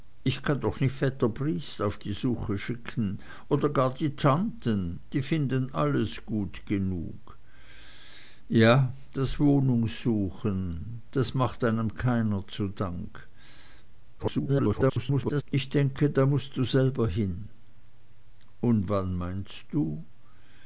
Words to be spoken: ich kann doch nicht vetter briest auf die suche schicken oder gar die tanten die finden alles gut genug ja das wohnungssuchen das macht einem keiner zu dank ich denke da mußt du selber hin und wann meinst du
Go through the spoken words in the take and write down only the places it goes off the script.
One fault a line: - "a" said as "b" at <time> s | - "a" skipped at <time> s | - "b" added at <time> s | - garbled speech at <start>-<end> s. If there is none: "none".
- garbled speech at 14.2-15.4 s